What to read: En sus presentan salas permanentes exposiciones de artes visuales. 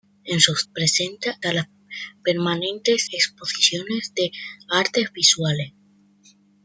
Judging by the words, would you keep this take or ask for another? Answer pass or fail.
pass